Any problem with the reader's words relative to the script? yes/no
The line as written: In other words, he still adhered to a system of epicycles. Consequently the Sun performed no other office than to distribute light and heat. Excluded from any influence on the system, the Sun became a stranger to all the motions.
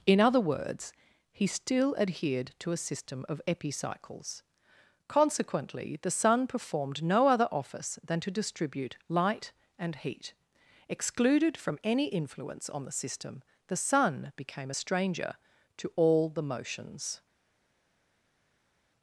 no